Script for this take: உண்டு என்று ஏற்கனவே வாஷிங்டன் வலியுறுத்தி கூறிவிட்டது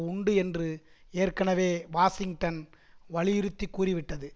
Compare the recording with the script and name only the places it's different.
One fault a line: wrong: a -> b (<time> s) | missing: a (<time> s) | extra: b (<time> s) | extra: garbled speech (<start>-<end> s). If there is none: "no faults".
no faults